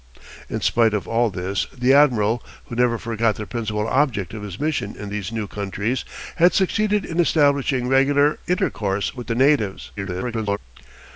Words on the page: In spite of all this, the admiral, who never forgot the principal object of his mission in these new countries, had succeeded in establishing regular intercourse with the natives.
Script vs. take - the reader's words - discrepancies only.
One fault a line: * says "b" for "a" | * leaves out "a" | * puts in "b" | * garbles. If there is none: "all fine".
* garbles